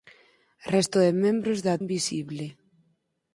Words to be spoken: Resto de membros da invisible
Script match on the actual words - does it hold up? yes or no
yes